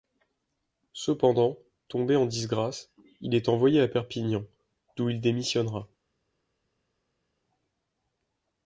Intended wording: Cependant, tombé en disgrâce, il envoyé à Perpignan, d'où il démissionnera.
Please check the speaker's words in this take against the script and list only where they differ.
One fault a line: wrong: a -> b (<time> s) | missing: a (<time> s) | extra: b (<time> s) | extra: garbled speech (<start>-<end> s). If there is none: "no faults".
extra: est (3.4 s)